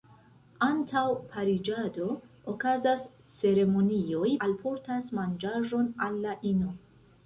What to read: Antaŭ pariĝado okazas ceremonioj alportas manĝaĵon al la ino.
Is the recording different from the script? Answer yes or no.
no